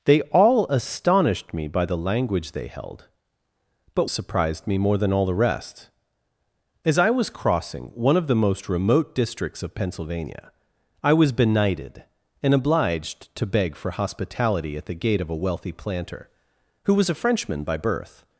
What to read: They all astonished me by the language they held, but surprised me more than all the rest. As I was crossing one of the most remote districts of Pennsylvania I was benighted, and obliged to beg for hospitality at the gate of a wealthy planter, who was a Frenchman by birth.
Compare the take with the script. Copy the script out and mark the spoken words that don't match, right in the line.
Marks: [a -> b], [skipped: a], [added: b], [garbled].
They all astonished me by the language they held, but surprised me more than all the rest. As I was crossing one of the most remote districts of Pennsylvania I was benighted, and obliged to beg for hospitality at the gate of a wealthy planter, who was a Frenchman by birth.